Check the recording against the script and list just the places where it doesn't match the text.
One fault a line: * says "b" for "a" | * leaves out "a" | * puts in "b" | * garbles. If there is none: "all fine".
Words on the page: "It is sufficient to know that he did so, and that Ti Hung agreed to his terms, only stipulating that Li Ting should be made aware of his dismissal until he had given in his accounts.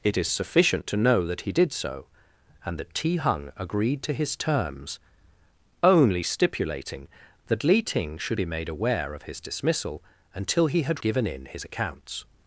all fine